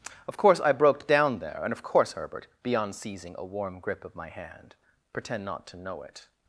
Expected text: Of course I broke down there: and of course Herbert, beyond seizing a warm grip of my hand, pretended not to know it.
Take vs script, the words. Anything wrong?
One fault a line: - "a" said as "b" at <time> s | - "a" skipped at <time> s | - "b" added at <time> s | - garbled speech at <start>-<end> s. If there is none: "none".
- "pretended" said as "pretend" at 5.1 s